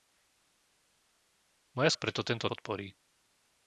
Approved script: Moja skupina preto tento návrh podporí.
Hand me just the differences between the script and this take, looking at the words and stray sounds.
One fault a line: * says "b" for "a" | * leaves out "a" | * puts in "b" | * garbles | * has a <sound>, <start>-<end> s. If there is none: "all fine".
* leaves out "skupina"
* leaves out "návrh"